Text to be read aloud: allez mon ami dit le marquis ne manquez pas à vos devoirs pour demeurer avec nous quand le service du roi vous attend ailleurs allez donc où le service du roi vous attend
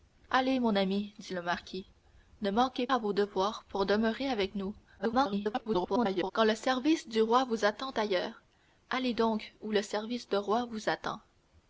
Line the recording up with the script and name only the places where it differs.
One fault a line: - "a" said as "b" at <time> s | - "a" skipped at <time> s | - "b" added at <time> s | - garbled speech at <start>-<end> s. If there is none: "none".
- "pas" skipped at 2.9 s
- garbled speech at 5.0-6.3 s